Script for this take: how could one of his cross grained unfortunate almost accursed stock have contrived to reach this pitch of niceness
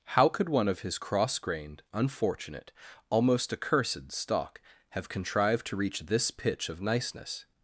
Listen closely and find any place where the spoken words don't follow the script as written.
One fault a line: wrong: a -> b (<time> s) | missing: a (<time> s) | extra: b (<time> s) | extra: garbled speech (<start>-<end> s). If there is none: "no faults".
no faults